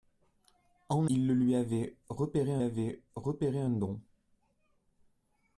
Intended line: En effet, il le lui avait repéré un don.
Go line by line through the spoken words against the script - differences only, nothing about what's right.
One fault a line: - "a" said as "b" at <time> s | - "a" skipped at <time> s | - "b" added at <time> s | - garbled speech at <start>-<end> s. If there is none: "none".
- "effet" skipped at 1.1 s
- "avait repéré un" added at 2.6 s